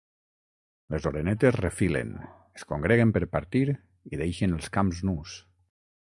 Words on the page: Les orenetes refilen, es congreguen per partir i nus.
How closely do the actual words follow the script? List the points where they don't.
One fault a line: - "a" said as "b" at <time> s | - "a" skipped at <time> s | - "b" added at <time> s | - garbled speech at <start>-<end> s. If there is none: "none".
- "deixen els camps" added at 4.2 s